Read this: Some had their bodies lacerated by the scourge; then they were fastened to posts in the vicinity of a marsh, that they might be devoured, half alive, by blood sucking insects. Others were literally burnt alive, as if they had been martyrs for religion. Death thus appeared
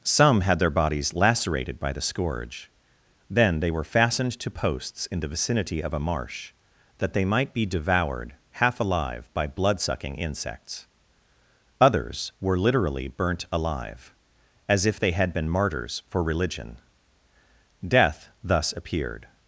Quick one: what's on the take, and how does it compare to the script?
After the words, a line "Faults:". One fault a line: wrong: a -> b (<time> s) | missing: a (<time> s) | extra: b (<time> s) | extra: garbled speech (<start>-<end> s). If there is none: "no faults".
Some had their bodies lacerated by the scourge; then they were fastened to posts in the vicinity of a marsh, that they might be devoured, half alive, by blood sucking insects. Others were literally burnt alive, as if they had been martyrs for religion. Death thus appeared
Faults:
no faults